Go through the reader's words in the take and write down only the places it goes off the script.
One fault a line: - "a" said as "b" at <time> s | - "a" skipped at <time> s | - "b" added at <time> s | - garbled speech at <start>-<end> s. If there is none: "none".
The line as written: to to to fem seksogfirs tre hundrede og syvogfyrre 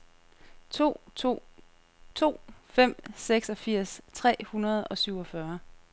none